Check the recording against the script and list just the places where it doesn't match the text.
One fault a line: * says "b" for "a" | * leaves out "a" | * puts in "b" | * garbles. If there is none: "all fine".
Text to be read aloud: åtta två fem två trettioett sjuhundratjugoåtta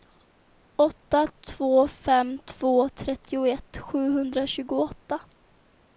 all fine